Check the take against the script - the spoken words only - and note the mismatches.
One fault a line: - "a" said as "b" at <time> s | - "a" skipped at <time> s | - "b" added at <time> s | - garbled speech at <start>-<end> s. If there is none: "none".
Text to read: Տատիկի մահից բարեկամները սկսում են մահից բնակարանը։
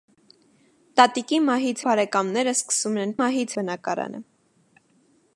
none